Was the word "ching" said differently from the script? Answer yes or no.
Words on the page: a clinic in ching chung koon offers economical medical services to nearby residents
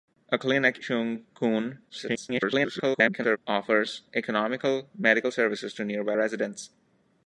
yes